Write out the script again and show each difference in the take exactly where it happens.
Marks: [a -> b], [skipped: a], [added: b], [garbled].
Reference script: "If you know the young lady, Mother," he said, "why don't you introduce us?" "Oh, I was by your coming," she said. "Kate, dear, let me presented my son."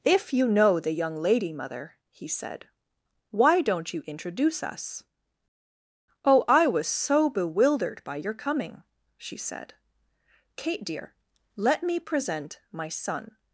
"If you know the young lady, Mother," he said, "why don't you introduce us?" "Oh, I was [added: so bewildered] by your coming," she said. "Kate, dear, let me [presented -> present] my son."